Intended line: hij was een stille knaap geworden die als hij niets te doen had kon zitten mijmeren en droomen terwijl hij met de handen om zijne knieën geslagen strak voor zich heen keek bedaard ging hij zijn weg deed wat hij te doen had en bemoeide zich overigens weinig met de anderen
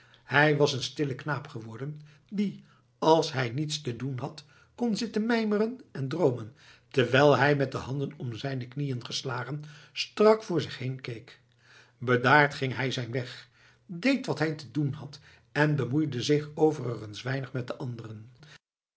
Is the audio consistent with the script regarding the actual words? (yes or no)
yes